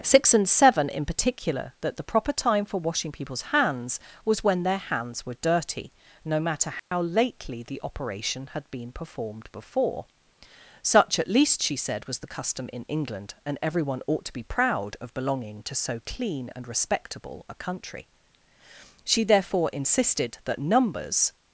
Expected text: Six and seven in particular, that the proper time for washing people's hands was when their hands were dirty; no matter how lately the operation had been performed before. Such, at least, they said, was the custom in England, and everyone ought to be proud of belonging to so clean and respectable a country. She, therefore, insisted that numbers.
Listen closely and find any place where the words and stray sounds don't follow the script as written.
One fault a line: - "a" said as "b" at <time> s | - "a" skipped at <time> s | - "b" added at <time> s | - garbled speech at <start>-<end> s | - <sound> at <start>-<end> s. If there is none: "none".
- dropout at 6.8-6.9 s
- "they" said as "she" at 11.6 s